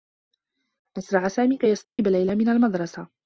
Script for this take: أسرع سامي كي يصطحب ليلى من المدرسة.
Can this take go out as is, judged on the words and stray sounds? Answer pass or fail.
fail